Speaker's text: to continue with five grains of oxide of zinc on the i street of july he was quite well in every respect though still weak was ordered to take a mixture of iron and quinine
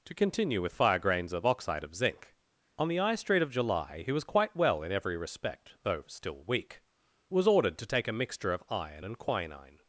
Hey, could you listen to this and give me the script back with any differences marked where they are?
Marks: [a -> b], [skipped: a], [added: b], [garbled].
to continue with [five -> fire] grains of oxide of zinc on the i street of july he was quite well in every respect though still weak was ordered to take a mixture of iron and quinine